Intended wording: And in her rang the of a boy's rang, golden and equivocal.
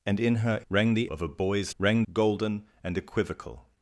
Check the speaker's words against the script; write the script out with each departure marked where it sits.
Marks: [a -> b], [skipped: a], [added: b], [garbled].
And in her rang the of a boy's rang, golden and equivocal.